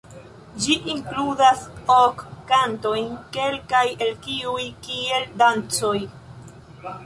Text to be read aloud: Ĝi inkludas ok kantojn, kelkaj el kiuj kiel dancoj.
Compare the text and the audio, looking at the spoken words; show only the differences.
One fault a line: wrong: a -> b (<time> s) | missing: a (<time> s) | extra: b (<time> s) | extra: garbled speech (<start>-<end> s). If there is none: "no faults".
no faults